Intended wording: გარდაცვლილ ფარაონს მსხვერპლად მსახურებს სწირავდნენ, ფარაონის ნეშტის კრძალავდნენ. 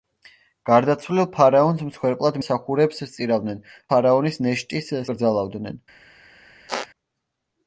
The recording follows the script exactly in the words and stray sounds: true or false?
false